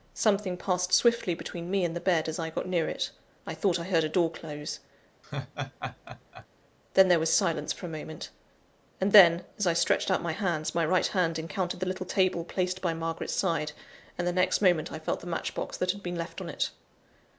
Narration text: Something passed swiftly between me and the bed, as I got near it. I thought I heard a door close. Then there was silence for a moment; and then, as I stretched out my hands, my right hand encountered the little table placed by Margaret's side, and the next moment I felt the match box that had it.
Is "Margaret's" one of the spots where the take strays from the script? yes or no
no